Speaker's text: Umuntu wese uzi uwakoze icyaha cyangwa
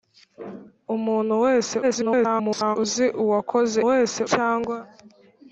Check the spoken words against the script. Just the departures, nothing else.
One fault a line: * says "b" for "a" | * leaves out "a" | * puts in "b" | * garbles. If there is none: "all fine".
* garbles
* says "wese" for "icyaha"